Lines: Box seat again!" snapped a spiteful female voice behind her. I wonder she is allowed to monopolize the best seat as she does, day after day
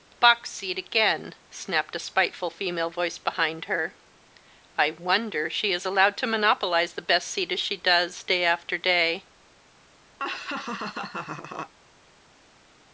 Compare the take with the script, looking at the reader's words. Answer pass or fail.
pass